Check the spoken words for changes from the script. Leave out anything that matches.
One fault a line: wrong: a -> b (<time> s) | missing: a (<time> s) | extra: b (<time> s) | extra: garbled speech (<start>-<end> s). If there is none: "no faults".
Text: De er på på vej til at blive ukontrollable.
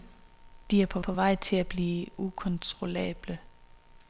no faults